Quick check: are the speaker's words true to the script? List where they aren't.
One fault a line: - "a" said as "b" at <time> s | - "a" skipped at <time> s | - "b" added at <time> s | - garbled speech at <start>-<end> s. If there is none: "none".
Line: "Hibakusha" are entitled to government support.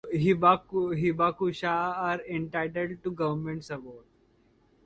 none